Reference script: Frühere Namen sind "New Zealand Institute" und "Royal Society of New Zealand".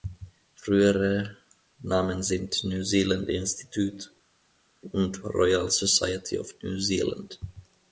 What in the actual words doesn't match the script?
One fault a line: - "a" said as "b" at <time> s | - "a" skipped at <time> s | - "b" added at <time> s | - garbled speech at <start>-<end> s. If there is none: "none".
none